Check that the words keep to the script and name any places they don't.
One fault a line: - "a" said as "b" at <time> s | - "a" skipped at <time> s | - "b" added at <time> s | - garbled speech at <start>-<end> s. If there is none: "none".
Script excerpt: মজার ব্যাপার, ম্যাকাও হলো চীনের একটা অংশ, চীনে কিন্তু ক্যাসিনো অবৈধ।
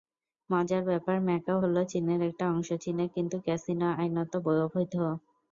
- "আইনত" added at 3.9 s